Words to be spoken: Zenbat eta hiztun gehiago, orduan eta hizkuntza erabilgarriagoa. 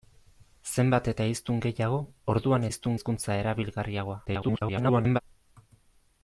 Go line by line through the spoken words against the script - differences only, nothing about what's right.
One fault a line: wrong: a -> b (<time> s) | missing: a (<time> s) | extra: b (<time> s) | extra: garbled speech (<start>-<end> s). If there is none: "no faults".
wrong: eta -> hiztun (2.7 s)
extra: garbled speech (4.3-5.2 s)